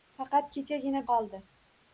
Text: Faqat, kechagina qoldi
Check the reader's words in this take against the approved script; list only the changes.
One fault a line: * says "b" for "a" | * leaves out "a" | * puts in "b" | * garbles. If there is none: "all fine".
all fine